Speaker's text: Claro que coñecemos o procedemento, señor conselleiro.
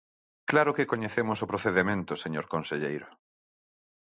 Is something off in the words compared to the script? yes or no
no